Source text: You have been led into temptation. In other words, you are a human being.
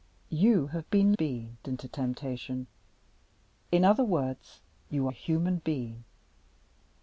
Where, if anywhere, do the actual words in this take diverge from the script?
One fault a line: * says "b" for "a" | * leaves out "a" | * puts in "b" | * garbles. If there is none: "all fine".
* says "being" for "led"
* leaves out "are"